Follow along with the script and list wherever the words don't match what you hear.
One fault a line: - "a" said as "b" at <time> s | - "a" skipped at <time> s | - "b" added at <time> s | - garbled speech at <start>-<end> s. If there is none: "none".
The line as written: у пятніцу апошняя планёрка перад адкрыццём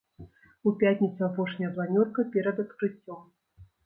none